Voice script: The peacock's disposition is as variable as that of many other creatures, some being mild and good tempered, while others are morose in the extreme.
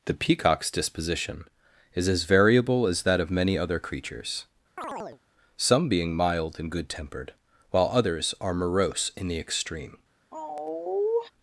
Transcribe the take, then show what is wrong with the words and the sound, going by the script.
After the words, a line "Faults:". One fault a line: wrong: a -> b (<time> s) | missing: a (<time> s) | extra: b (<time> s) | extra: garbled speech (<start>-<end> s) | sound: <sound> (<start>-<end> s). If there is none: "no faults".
The peacock's disposition is as variable as that of many other creatures, some being mild and good tempered, while others are morose in the extreme.
Faults:
sound: chirp (4.8-5.2 s)
sound: sigh (10.3-11.3 s)